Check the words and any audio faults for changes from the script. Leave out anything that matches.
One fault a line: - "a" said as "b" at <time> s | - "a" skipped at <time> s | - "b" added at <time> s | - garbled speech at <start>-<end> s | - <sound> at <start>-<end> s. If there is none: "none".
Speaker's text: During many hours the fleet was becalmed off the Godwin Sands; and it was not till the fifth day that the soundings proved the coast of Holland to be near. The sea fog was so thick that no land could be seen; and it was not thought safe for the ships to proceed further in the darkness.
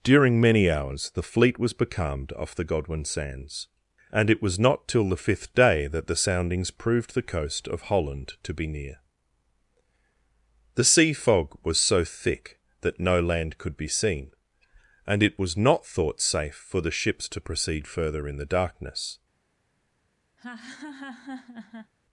- laugh at 20.4-21.9 s